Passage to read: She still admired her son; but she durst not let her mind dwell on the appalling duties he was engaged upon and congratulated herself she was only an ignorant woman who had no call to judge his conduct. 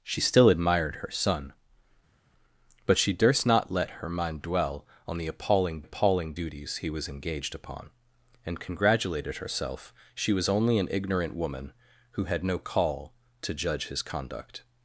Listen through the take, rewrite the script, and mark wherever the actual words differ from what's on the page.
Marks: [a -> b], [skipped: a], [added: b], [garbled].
She still admired her son; but she durst not let her mind dwell on the appalling [added: appalling] duties he was engaged upon and congratulated herself she was only an ignorant woman who had no call to judge his conduct.